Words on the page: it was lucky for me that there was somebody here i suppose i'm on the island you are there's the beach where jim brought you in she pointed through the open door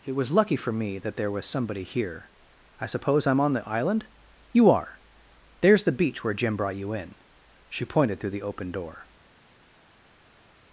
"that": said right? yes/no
yes